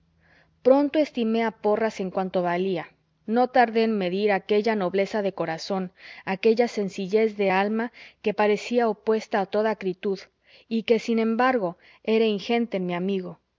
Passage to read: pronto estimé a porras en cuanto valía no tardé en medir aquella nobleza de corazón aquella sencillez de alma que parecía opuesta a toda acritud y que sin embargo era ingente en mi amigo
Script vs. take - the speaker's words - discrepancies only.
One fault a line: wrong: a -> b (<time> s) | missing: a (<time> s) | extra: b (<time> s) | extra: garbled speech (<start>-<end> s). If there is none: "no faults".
no faults